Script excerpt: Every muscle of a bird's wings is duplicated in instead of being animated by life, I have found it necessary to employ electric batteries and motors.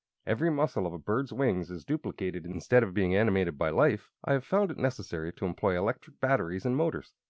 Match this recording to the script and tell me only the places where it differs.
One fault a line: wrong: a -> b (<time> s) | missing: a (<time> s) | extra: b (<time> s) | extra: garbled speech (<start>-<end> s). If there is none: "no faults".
no faults